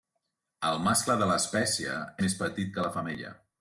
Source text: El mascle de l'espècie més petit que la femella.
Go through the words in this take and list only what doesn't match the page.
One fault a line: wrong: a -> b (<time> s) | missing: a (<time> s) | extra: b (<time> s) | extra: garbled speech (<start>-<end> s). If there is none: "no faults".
no faults